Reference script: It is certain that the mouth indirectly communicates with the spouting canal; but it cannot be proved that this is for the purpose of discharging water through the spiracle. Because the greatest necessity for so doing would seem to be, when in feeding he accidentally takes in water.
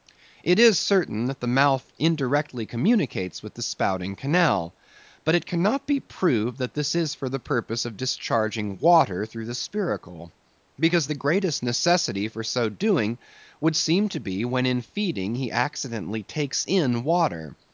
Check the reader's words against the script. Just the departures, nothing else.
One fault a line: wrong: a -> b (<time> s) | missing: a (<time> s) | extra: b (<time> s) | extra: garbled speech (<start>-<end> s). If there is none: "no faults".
no faults